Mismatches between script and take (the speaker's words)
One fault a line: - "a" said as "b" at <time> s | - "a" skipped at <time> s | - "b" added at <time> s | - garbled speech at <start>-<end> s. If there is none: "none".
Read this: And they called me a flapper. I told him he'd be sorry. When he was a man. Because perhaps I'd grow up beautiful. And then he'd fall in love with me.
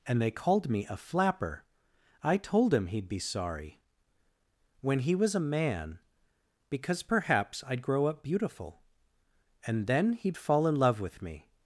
none